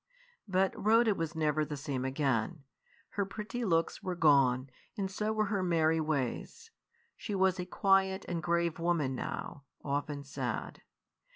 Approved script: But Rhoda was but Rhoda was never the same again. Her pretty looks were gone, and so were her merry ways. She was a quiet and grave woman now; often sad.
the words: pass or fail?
fail